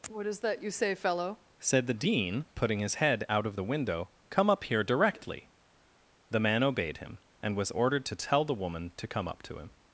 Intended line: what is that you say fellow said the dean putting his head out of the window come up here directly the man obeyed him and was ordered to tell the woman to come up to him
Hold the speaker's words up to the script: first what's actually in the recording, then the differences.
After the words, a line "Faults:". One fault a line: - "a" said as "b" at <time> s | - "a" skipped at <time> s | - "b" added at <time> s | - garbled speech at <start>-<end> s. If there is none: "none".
what is that you say fellow said the dean putting his head out of the window come up here directly the man obeyed him and was ordered to tell the woman to come up to him
Faults:
none